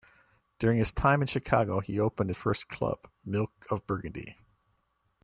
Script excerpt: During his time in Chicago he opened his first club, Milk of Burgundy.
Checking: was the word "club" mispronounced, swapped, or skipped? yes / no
no